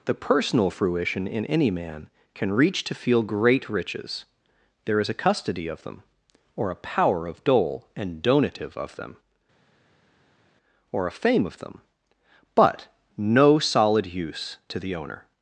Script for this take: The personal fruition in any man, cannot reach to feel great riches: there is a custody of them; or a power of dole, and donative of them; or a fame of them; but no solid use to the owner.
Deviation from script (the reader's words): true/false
true